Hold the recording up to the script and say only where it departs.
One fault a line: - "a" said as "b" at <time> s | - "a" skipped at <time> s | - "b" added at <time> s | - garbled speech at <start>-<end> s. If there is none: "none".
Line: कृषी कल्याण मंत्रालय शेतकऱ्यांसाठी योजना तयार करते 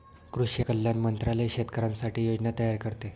none